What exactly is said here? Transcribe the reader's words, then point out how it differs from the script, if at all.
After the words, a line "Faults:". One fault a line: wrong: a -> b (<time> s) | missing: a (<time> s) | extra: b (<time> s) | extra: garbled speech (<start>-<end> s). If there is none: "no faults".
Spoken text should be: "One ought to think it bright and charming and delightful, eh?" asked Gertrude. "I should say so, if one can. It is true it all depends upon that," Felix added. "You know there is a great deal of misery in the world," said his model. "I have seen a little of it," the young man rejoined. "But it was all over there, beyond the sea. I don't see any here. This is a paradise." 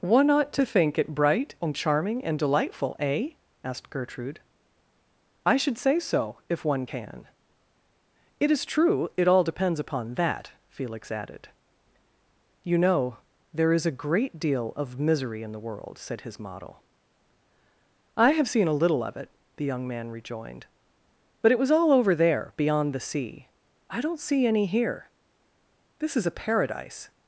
"One ought to think it bright and charming and delightful, eh?" asked Gertrude. "I should say so, if one can. It is true it all depends upon that," Felix added. "You know there is a great deal of misery in the world," said his model. "I have seen a little of it," the young man rejoined. "But it was all over there, beyond the sea. I don't see any here. This is a paradise."
Faults:
no faults